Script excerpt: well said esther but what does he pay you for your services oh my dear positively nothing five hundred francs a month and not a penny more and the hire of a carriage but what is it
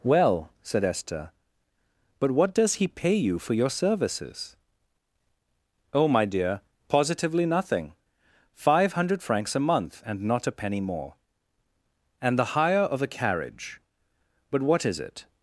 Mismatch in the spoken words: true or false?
false